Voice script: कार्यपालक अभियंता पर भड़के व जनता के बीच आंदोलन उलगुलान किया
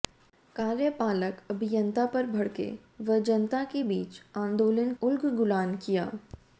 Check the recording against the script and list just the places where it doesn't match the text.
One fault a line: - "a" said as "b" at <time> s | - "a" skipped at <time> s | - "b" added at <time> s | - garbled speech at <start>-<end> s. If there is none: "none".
none